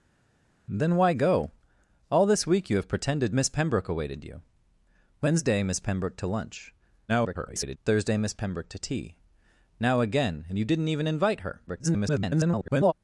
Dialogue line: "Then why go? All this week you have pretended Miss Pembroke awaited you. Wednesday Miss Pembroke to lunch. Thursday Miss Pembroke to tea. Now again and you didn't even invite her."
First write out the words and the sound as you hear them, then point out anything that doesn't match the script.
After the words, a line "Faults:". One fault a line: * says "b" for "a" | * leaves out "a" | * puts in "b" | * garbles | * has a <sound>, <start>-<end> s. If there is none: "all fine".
"Then why go? All this week you have pretended Miss Pembroke awaited you. Wednesday Miss Pembroke to lunch. [garbled] Thursday Miss Pembroke to tea. Now again and you didn't even invite her." [garbled]
Faults:
* garbles
* garbles